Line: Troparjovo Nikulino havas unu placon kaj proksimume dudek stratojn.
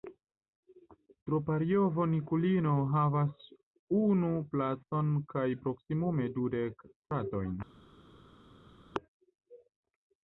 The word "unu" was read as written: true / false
true